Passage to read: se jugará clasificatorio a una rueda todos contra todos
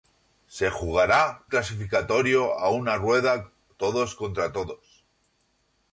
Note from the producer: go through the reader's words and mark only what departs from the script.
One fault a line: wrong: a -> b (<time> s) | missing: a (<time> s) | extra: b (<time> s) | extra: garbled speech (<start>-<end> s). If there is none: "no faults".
no faults